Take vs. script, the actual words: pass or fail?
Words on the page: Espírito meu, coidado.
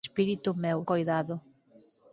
pass